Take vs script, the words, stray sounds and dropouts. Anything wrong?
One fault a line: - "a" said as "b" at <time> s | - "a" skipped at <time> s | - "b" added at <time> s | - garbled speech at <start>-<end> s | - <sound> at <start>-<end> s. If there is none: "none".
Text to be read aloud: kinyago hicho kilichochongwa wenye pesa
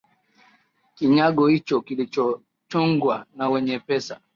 - "na" added at 3.4 s